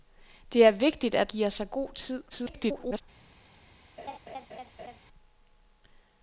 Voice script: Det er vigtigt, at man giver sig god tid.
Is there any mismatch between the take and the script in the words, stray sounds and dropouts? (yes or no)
yes